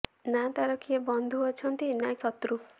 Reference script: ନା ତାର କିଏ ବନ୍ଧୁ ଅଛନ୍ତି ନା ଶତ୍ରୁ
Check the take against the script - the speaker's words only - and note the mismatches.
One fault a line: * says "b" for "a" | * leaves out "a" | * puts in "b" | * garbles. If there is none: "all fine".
all fine